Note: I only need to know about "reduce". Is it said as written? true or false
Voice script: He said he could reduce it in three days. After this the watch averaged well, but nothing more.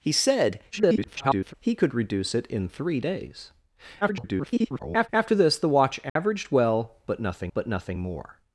true